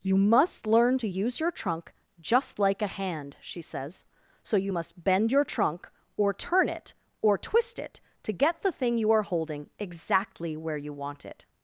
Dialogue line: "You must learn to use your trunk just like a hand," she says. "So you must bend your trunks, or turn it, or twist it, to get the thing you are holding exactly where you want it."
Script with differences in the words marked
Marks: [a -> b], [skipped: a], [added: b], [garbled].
"You must learn to use your trunk just like a hand," she says. "So you must bend your [trunks, -> trunk] or turn it, or twist it, to get the thing you are holding exactly where you want it."